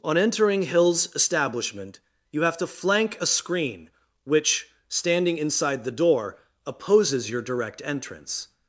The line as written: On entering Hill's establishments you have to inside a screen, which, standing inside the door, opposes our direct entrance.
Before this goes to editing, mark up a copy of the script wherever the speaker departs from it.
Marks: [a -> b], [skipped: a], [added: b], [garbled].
On entering Hill's [establishments -> establishment] you have to [inside -> flank] a screen, which, standing inside the door, opposes [our -> your] direct entrance.